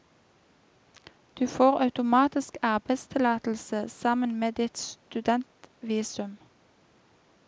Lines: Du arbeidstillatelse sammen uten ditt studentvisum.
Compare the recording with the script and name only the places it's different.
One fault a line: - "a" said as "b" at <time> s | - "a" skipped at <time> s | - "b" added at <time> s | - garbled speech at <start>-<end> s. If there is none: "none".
- "får automatisk" added at 1.5 s
- "uten" said as "med" at 4.4 s